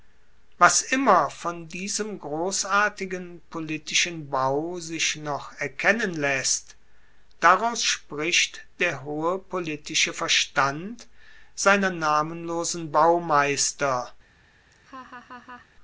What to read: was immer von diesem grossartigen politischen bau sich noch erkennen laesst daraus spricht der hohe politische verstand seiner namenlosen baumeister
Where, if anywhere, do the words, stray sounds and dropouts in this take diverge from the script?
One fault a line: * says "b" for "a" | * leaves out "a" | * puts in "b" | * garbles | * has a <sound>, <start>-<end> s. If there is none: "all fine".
* has a laugh, 14.7-15.7 s